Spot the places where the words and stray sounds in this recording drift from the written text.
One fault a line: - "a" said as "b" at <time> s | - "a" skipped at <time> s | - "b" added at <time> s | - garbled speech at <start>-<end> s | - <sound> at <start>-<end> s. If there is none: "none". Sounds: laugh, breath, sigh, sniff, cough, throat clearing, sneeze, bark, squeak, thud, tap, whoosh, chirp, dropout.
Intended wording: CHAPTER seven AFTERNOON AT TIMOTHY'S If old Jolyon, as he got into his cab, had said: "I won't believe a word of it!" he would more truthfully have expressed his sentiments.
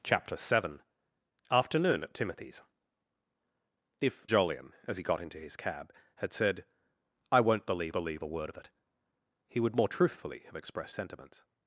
- "old" skipped at 4.2 s
- "believe" added at 7.9 s
- "his" skipped at 11.0 s